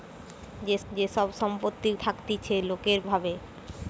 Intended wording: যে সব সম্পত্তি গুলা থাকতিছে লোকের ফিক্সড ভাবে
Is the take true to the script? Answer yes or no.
no